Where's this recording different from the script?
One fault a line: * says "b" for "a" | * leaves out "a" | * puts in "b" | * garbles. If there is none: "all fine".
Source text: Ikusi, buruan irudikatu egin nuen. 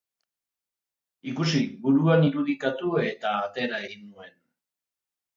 * puts in "eta atera"